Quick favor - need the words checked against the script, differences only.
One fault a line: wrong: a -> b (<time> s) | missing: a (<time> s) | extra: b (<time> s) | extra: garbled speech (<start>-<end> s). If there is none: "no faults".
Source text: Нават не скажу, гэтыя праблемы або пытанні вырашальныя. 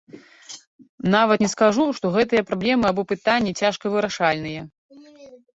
extra: што (2.0 s)
extra: цяжка (3.6 s)